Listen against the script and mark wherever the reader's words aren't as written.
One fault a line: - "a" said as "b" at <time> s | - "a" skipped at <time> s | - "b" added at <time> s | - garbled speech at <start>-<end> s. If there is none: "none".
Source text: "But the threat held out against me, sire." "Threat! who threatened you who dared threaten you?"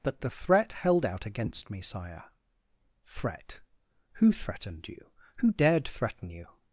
none